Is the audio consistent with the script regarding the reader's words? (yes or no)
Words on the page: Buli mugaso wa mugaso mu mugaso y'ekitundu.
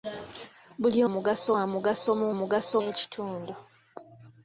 yes